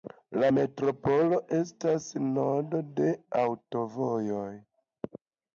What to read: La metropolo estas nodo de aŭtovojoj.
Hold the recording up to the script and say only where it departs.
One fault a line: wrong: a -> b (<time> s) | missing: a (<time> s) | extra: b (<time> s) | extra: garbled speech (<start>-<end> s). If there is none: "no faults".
no faults